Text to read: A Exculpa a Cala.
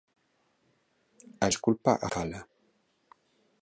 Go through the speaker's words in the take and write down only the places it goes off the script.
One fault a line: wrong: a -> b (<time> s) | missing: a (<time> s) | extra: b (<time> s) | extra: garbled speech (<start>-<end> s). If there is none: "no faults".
no faults